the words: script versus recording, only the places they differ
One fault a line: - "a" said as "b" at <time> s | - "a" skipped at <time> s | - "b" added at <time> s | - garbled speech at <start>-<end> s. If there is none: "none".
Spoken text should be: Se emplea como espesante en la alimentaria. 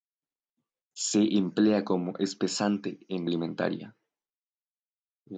none